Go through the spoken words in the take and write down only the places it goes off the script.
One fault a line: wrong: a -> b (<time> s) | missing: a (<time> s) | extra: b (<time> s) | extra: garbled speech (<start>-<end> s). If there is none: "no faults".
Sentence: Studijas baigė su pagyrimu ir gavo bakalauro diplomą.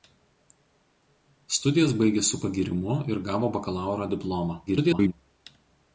extra: garbled speech (4.7-5.1 s)